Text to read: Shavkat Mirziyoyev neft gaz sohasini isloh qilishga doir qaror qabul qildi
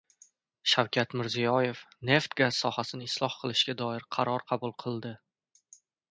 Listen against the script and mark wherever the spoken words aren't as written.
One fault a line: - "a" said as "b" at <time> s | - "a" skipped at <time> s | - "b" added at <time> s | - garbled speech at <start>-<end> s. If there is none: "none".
none